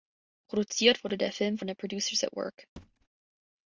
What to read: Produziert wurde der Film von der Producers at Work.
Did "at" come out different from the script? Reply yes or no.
no